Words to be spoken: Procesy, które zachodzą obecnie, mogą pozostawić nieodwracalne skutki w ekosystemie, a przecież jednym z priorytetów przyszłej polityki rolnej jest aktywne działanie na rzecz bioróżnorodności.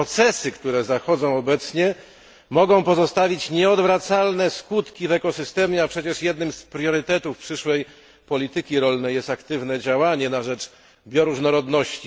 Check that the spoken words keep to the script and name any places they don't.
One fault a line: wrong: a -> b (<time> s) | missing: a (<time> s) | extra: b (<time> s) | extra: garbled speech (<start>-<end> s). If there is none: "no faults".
no faults